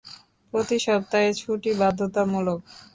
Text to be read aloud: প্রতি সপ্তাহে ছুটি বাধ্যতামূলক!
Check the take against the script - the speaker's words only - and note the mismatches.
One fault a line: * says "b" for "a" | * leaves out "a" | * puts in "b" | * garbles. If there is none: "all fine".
all fine